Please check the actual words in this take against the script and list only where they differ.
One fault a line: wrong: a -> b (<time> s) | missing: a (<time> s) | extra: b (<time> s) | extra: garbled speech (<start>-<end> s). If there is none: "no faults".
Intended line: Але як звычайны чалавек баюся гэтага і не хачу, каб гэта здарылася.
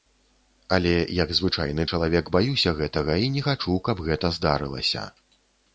no faults